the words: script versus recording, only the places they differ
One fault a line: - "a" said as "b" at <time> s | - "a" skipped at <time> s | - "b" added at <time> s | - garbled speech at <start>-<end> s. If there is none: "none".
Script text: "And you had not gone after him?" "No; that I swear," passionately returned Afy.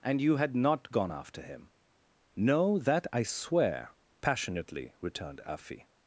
none